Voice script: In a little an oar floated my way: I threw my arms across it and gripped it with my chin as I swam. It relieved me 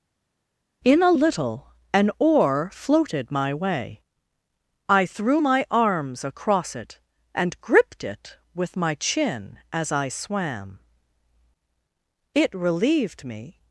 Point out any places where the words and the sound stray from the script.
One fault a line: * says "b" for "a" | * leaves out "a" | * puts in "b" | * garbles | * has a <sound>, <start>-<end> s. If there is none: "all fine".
all fine